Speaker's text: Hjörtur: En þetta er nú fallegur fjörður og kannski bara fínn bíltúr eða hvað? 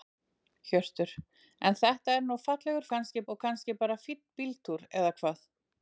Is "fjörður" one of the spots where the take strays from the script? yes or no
yes